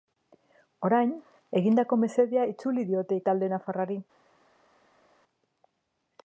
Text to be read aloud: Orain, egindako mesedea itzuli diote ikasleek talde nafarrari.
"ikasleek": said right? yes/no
no